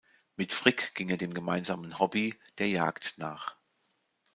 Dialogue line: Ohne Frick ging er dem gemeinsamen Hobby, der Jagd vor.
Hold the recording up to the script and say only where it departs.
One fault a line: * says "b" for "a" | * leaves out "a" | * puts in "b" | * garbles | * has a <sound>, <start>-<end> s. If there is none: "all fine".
* says "Mit" for "Ohne"
* says "nach" for "vor"